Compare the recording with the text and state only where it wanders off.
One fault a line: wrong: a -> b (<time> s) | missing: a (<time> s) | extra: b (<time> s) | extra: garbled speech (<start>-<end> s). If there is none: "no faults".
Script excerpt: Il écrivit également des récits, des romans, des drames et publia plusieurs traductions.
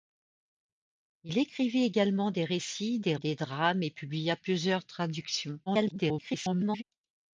missing: romans (3.1 s)
extra: garbled speech (5.7-6.8 s)